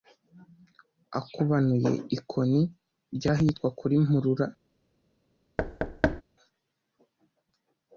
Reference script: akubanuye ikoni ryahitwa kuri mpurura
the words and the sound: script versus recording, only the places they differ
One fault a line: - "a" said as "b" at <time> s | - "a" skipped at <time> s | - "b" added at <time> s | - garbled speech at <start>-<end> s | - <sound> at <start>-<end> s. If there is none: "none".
- thud at 5.6-6.2 s